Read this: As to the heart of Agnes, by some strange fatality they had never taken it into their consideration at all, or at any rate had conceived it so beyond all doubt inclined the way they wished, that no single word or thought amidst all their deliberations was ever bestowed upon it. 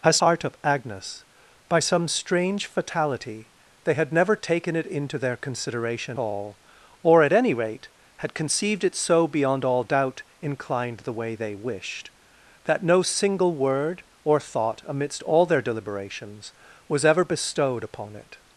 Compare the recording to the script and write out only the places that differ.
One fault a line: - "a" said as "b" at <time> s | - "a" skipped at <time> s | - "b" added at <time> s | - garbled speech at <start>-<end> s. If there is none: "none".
- "to the" skipped at 0.2 s
- "at" skipped at 6.2 s